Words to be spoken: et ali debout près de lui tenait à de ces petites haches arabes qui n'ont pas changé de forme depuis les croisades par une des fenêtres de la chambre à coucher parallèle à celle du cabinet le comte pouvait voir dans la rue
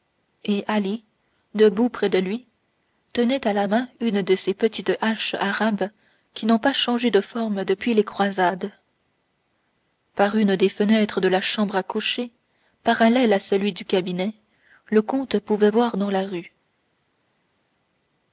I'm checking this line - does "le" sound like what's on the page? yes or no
yes